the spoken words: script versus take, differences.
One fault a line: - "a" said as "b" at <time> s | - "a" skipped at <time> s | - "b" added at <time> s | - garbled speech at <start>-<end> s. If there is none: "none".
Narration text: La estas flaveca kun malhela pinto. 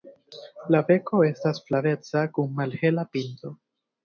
- "beko" added at 0.9 s